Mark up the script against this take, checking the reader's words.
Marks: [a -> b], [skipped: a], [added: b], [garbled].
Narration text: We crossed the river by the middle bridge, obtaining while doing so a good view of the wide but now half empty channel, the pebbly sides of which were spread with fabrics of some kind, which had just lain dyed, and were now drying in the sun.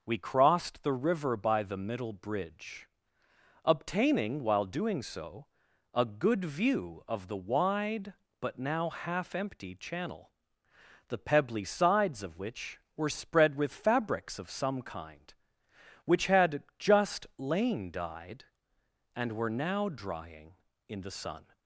We crossed the river by the middle bridge, obtaining while doing so a good view of the wide but now half empty channel, the pebbly sides of which were spread with fabrics of some kind, which had just lain dyed, and were now drying in the sun.